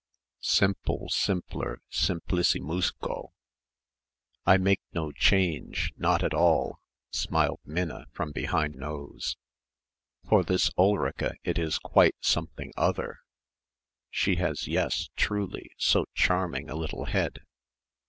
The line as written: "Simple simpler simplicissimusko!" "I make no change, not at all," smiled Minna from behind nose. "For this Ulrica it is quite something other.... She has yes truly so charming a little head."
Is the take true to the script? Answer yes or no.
yes